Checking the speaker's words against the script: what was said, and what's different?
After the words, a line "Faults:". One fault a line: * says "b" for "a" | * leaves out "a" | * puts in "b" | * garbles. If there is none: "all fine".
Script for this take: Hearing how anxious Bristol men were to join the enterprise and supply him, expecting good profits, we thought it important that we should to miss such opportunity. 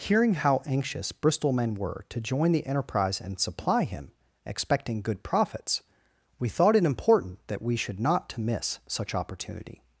Hearing how anxious Bristol men were to join the enterprise and supply him, expecting good profits, we thought it important that we should not to miss such opportunity.
Faults:
* puts in "not"